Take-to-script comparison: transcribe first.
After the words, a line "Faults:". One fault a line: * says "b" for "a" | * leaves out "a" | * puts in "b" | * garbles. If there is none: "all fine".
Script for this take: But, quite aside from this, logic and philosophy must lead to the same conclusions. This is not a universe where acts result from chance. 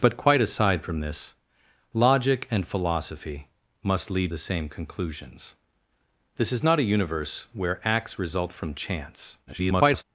But, quite aside from this, logic and philosophy must lead the same conclusions. This is not a universe where acts result from chance. [garbled]
Faults:
* leaves out "to"
* garbles